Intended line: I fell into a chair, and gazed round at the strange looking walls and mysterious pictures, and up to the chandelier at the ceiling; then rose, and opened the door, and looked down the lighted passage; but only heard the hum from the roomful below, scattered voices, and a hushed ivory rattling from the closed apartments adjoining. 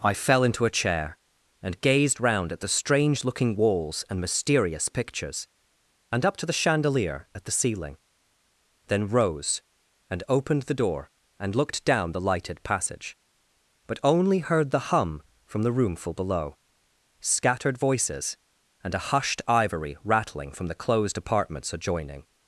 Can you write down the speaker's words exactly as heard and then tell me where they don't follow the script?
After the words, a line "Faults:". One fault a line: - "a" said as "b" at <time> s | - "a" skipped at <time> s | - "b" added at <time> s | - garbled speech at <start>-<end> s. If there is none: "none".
I fell into a chair, and gazed round at the strange looking walls and mysterious pictures, and up to the chandelier at the ceiling; then rose, and opened the door, and looked down the lighted passage; but only heard the hum from the roomful below, scattered voices, and a hushed ivory rattling from the closed apartments adjoining.
Faults:
none